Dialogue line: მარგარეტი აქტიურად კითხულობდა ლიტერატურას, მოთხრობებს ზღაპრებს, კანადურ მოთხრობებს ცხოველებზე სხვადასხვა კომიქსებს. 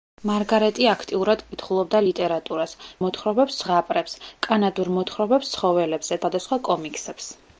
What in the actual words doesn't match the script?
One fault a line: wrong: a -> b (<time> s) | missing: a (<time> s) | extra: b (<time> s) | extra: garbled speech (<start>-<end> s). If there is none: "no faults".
no faults